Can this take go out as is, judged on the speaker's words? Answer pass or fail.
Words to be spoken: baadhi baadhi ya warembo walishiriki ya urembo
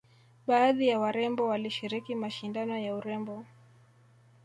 fail